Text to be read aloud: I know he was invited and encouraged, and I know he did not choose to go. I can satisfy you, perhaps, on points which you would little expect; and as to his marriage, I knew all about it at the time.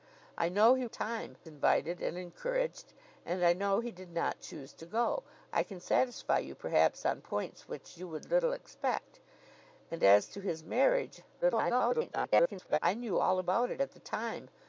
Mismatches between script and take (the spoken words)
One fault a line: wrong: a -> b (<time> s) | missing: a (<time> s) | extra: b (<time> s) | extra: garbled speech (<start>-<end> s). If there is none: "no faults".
wrong: was -> time (0.9 s)
extra: garbled speech (11.4-12.8 s)